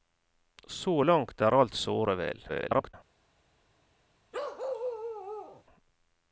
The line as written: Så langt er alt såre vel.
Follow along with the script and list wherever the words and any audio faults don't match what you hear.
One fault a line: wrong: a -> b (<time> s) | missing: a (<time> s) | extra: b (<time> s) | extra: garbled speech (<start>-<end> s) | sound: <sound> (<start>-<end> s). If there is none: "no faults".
extra: garbled speech (2.5-2.9 s)
sound: bark (4.3-5.6 s)